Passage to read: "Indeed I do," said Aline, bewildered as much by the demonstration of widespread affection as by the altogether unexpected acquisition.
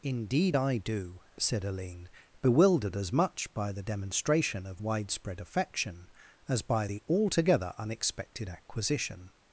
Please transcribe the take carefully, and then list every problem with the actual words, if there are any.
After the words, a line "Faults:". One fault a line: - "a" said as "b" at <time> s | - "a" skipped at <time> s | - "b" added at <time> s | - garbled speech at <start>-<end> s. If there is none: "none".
"Indeed I do," said Aline, bewildered as much by the demonstration of widespread affection as by the altogether unexpected acquisition.
Faults:
none